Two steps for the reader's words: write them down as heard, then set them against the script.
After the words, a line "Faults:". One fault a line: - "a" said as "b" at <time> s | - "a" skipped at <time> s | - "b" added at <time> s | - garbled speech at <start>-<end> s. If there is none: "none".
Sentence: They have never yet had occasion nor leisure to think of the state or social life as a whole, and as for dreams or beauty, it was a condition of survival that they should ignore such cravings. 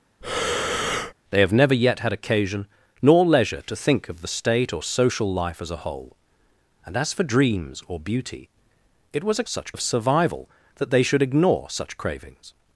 They have never yet had occasion nor leisure to think of the state or social life as a whole, and as for dreams or beauty, it was a such of survival that they should ignore such cravings.
Faults:
- "condition" said as "such" at 9.5 s